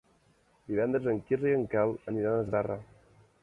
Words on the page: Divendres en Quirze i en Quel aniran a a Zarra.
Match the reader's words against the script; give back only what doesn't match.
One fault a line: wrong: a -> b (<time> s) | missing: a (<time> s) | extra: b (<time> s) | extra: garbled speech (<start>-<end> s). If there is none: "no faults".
no faults